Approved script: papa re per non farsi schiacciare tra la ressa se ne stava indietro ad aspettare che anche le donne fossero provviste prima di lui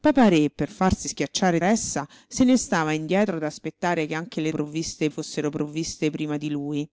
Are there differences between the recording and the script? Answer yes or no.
yes